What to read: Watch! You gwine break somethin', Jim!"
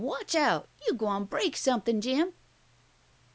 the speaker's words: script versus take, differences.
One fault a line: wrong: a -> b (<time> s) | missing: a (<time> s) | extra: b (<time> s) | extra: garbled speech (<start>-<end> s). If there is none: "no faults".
extra: out (0.3 s)